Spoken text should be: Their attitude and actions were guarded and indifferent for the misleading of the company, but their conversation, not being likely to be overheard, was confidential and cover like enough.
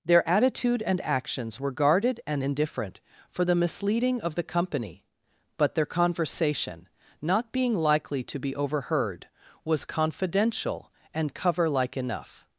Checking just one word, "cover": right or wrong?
right